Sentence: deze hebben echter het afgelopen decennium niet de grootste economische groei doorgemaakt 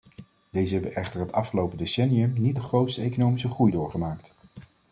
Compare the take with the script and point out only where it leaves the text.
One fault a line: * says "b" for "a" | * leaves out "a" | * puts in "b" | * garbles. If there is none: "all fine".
all fine